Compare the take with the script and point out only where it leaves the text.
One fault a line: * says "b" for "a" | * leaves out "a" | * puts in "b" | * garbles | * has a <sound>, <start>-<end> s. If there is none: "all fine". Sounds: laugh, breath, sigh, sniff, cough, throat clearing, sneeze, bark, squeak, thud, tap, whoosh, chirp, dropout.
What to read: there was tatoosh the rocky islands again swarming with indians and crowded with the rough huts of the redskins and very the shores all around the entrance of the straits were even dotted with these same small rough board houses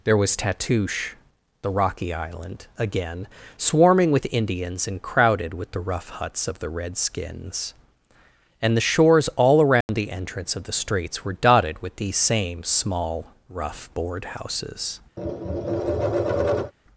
* says "island" for "islands"
* leaves out "very"
* has a dropout, 9.8-9.9 s
* leaves out "even"
* has a tap, 15.2-16.7 s